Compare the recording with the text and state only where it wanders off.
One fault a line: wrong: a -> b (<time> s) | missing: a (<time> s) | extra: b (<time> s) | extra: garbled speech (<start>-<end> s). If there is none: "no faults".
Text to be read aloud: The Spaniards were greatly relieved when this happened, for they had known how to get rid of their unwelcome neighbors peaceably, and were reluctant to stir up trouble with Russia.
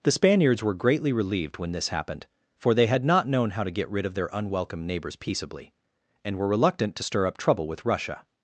extra: not (3.0 s)